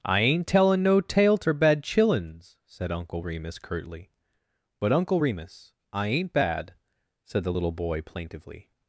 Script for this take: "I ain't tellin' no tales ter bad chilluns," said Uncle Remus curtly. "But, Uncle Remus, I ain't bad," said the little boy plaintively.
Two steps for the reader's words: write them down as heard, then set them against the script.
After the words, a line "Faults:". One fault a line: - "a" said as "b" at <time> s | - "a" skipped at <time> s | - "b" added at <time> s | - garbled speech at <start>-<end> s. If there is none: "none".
"I ain't tellin' no tale ter bad chilluns," said Uncle Remus curtly. "But, Uncle Remus, I ain't bad," said the little boy plaintively.
Faults:
- "tales" said as "tale" at 1.0 s